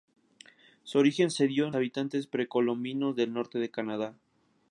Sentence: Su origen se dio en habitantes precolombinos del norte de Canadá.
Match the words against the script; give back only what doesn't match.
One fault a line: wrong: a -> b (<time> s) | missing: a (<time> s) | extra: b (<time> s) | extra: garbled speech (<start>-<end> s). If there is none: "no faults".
no faults